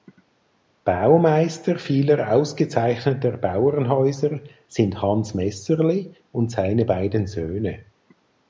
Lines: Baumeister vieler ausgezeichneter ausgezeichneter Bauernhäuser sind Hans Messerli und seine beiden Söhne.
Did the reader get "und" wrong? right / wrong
right